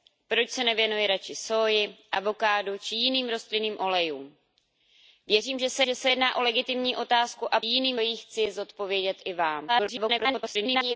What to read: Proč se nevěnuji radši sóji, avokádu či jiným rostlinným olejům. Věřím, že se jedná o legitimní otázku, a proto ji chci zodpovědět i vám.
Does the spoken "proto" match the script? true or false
false